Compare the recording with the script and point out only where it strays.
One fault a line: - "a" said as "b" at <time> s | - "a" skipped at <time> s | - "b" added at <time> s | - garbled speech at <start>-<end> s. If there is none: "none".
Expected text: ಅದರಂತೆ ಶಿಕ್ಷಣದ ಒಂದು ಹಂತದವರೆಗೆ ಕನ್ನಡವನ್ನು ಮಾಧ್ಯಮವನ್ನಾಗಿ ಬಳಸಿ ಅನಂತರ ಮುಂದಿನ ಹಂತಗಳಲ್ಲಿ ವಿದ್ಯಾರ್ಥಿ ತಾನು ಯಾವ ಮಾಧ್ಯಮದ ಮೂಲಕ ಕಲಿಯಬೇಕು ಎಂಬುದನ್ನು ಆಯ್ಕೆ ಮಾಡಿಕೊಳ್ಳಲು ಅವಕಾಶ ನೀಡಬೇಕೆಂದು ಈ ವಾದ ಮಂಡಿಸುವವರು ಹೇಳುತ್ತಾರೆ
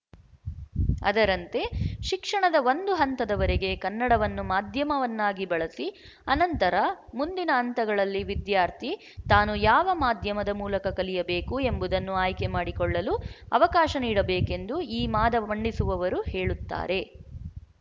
none